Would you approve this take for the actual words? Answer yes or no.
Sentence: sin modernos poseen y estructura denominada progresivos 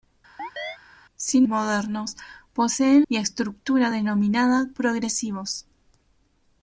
yes